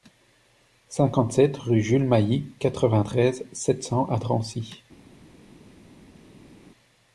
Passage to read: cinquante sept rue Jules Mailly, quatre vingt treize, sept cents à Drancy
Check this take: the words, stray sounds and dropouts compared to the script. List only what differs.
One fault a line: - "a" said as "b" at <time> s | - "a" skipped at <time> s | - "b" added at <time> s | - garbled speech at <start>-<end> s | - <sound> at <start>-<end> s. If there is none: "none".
none